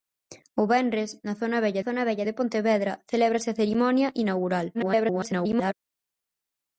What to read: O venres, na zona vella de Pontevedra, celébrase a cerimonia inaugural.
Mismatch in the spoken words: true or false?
true